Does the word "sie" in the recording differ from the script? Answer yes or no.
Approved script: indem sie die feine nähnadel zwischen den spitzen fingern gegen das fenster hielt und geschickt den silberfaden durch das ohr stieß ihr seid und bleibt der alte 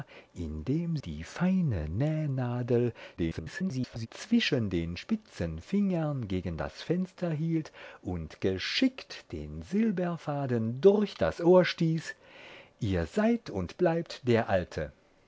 yes